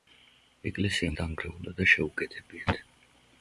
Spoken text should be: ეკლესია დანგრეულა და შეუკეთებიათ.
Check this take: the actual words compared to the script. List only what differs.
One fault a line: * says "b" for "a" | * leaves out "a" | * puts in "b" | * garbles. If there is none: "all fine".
all fine